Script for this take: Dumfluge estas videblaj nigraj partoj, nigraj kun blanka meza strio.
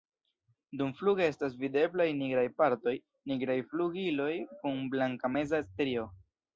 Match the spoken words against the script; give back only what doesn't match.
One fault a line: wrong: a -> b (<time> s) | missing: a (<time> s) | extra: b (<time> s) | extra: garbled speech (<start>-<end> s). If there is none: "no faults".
extra: flugiloj (3.7 s)